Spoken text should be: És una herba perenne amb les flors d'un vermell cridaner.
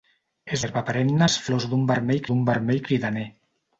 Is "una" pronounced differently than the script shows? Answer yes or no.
yes